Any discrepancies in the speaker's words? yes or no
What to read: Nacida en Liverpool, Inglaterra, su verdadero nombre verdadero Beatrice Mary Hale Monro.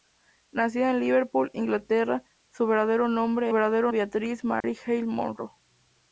no